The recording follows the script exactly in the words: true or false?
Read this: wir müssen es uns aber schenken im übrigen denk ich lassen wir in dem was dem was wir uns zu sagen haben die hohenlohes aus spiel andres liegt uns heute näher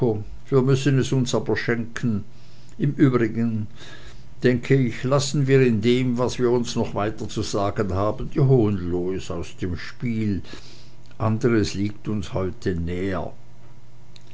false